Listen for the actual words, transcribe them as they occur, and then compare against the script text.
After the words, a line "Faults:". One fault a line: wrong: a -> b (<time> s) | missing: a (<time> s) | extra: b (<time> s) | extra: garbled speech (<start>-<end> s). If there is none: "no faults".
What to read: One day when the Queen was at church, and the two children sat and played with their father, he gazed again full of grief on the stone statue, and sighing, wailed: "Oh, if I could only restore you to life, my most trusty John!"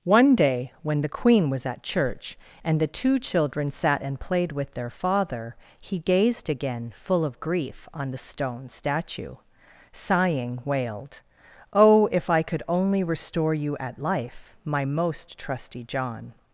One day when the Queen was at church, and the two children sat and played with their father, he gazed again full of grief on the stone statue, sighing, wailed: "Oh, if I could only restore you at life, my most trusty John!"
Faults:
missing: and (9.4 s)
wrong: to -> at (13.8 s)